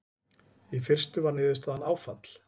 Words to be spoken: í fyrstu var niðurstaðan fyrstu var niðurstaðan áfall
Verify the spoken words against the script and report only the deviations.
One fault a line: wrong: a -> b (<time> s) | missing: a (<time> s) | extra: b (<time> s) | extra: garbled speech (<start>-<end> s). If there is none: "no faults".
missing: fyrstu var niðurstaðan (1.9 s)